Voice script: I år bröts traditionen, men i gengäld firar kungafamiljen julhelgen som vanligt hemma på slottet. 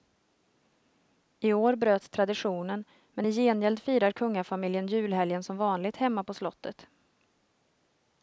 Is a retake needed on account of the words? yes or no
no